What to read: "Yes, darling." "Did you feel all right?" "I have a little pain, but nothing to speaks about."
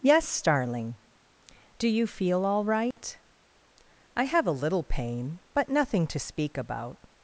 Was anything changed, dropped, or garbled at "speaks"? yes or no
yes